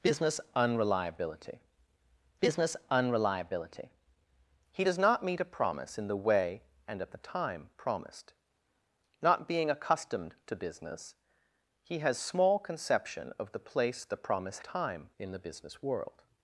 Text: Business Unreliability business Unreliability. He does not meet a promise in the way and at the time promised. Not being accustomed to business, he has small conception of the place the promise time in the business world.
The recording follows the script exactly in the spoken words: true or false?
true